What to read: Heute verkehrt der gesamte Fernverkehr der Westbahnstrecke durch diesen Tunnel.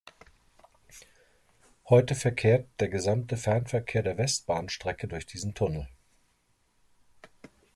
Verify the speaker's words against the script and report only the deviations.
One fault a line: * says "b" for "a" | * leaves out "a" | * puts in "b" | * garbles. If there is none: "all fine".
all fine